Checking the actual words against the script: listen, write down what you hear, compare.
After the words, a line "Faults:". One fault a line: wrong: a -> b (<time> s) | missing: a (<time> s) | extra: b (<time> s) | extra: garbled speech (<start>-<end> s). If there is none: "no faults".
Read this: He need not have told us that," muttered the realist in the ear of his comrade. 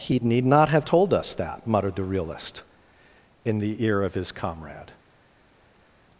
He need not have told us that," muttered the realist in the ear of his comrade.
Faults:
no faults